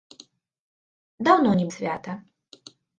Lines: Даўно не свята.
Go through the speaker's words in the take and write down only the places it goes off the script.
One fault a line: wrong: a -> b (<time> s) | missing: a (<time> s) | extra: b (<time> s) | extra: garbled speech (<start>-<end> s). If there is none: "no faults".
no faults